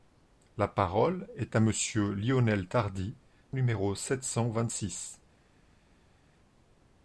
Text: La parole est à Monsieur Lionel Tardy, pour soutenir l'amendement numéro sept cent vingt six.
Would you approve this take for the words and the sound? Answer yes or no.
no